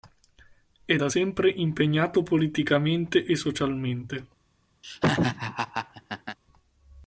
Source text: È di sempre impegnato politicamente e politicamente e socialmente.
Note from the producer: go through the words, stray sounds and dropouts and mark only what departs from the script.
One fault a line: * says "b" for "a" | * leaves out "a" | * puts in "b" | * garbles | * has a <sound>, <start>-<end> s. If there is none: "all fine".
* says "da" for "di"
* leaves out "politicamente e"
* has a laugh, 4.8-6.4 s